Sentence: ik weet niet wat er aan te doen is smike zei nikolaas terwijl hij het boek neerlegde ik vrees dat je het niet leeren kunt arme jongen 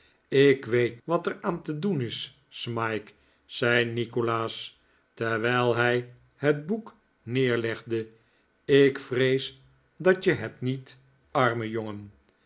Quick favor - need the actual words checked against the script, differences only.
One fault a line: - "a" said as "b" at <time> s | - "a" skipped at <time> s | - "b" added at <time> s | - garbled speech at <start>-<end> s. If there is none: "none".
- "niet" skipped at 1.0 s
- "leeren kunt" skipped at 11.0 s